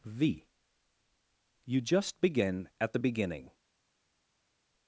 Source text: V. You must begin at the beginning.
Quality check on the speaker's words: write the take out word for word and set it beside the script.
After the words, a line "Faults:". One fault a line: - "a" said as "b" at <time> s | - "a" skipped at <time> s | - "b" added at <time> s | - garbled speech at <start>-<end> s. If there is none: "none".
V. You just begin at the beginning.
Faults:
- "must" said as "just" at 1.8 s